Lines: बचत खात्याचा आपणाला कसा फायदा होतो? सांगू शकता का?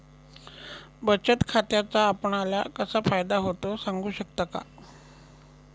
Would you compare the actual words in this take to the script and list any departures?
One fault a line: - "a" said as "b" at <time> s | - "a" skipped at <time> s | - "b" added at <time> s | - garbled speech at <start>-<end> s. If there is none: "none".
none